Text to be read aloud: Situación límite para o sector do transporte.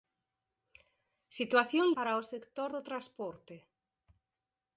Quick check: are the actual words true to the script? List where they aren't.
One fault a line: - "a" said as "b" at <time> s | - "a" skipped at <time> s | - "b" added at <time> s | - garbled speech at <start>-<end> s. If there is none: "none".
- "límite" skipped at 1.9 s